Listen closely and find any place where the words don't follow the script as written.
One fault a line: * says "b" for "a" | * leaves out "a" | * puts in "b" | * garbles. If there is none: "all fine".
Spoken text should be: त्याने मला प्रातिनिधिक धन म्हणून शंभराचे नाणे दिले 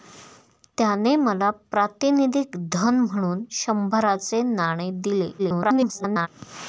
* garbles